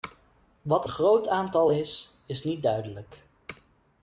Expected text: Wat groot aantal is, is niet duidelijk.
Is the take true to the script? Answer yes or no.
yes